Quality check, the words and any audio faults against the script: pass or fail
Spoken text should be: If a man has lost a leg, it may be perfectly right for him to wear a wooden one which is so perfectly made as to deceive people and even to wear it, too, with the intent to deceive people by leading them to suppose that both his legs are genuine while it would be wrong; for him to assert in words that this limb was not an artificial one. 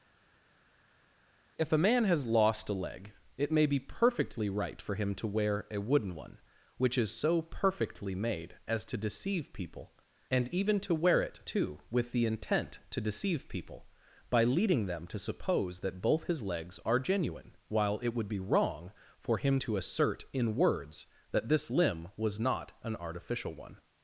pass